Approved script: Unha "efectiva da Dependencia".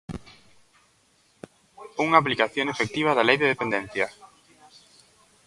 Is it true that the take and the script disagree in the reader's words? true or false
true